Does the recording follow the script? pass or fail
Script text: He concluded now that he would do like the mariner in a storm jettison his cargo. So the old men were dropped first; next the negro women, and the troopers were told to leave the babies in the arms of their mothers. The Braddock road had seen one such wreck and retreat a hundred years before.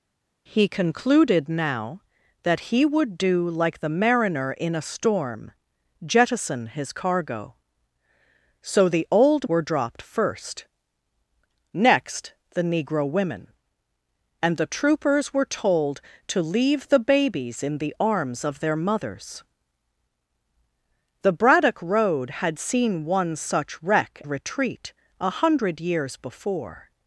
fail